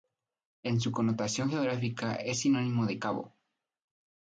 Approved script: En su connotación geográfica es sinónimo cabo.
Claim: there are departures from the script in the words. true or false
true